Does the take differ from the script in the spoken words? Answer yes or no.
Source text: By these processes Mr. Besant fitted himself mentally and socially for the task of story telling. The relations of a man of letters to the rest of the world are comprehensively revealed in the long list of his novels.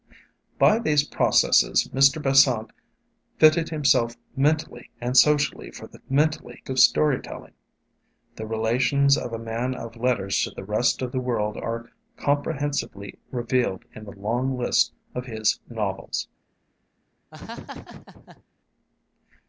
yes